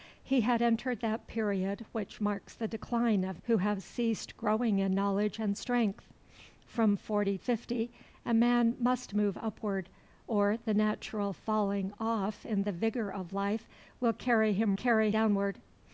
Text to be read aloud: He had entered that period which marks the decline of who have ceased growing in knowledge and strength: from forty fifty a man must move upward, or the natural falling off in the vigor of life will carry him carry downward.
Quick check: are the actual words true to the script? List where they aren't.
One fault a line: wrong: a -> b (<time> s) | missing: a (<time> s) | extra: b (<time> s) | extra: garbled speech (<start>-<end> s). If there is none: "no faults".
no faults